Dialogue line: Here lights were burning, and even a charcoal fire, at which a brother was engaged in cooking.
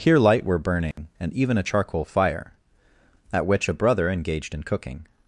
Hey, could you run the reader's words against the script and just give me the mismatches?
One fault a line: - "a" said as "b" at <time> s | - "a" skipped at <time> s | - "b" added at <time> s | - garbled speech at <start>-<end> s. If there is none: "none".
- "lights" said as "light" at 0.2 s
- "was" skipped at 4.1 s